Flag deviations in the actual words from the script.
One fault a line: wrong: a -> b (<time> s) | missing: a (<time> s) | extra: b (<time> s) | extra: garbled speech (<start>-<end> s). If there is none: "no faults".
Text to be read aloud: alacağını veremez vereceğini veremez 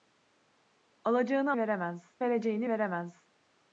no faults